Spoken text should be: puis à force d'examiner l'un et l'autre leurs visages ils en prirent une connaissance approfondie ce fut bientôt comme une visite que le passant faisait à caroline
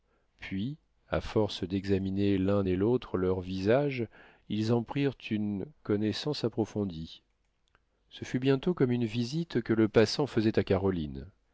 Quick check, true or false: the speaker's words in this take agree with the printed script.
true